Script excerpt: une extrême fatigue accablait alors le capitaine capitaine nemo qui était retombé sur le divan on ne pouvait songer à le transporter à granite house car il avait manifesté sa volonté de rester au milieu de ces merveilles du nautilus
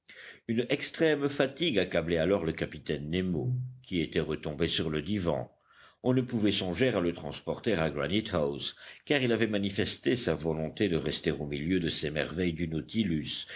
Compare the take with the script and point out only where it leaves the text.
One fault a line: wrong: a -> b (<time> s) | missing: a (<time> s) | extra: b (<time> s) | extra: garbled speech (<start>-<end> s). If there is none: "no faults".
missing: capitaine (3.1 s)